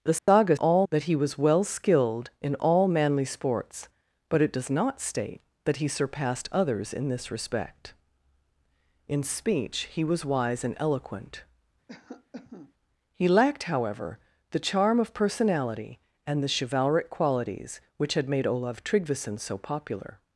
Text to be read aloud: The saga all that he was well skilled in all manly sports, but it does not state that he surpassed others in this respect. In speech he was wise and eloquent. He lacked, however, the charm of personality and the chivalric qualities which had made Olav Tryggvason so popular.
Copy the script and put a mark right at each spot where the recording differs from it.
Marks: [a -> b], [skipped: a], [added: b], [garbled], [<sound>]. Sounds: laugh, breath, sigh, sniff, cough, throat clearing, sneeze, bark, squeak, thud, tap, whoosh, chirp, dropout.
The saga [dropout] all that he was well skilled in all manly sports, but it does not state that he surpassed others in this respect. In speech he was wise and eloquent. [cough] He lacked, however, the charm of personality and the chivalric qualities which had made Olav Tryggvason so popular.